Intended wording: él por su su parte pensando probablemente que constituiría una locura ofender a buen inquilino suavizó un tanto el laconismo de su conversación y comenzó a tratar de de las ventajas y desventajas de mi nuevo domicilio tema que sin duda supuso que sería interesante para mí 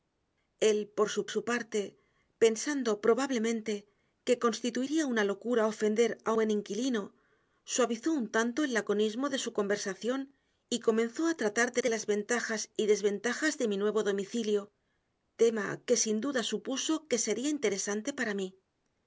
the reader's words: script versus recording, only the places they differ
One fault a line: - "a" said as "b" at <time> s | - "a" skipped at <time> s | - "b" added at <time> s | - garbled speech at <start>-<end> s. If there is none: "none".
none